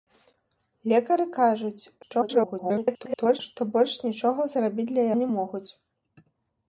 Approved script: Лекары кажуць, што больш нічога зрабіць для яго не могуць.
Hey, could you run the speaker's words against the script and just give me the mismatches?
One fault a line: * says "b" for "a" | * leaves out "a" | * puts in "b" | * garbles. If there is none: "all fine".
* garbles
* leaves out "яго"